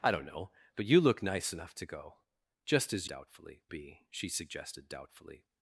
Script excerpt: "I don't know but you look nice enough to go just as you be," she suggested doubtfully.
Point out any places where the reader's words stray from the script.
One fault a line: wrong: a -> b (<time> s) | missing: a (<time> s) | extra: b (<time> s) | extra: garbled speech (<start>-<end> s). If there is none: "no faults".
wrong: you -> doubtfully (3.1 s)